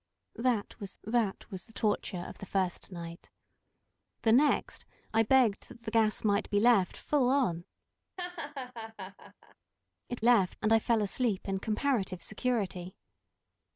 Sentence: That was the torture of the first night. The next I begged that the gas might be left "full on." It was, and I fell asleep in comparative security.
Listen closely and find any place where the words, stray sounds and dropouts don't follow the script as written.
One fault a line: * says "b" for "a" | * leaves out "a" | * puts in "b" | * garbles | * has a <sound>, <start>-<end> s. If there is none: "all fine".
* puts in "that was"
* has a laugh, 8.2-9.6 s
* says "left" for "was"